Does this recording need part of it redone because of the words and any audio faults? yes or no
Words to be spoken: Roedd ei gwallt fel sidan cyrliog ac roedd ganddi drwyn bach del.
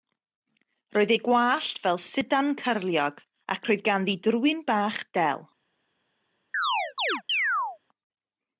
yes